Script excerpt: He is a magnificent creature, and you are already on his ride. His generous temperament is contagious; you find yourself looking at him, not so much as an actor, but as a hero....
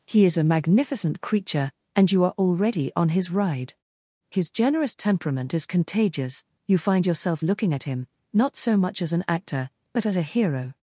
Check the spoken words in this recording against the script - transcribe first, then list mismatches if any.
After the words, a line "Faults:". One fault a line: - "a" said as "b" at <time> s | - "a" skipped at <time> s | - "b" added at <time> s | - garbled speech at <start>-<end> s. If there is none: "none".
He is a magnificent creature, and you are already on his ride. His generous temperament is contagious; you find yourself looking at him, not so much as an actor, but at a hero....
Faults:
- "as" said as "at" at 10.1 s